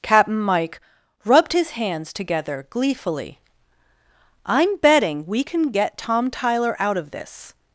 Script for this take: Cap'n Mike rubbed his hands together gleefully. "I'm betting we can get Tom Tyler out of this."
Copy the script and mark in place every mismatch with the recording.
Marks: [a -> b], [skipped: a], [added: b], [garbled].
Cap'n Mike rubbed his hands together gleefully. "I'm betting we can get Tom Tyler out of this."